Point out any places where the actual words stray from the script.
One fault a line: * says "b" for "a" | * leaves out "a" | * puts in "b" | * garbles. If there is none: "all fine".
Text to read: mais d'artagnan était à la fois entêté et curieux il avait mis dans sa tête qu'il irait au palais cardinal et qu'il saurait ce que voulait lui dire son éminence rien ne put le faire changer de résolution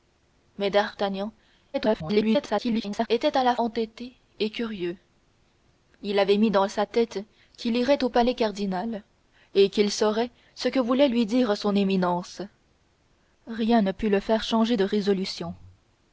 * garbles
* leaves out "fois"